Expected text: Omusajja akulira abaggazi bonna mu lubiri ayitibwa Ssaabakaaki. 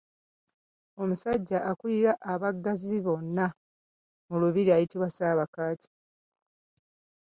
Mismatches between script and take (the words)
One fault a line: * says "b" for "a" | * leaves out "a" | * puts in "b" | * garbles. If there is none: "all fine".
all fine